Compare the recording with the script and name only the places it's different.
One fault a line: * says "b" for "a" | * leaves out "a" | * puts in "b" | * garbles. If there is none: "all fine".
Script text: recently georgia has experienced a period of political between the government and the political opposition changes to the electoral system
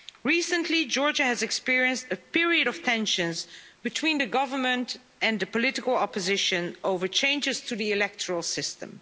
* says "tensions" for "political"
* puts in "over"